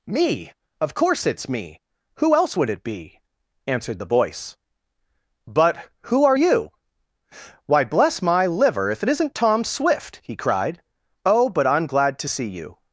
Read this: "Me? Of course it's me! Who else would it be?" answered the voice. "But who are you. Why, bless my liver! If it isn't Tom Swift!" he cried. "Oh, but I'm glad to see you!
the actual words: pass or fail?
pass